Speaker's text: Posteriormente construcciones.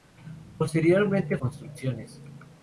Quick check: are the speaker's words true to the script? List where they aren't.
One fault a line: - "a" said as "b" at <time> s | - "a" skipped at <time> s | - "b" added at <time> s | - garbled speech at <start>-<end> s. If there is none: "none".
none